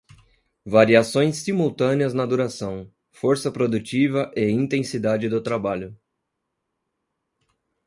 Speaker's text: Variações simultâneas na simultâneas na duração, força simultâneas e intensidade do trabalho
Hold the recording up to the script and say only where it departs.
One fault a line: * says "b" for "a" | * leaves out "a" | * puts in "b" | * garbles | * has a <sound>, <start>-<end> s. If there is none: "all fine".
* leaves out "simultâneas na"
* says "produtiva" for "simultâneas"